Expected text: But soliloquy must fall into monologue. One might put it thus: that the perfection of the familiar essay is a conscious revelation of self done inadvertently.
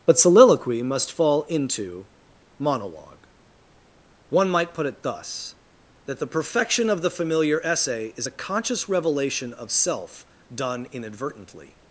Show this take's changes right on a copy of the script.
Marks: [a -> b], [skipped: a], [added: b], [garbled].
But soliloquy must fall into monologue. One might put it thus: that the perfection of the familiar essay is a conscious revelation of self done inadvertently.